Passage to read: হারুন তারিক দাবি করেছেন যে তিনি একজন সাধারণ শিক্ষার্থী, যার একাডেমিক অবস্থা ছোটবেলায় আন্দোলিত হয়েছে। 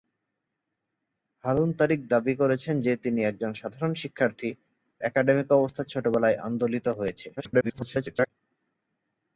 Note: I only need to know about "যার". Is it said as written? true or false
false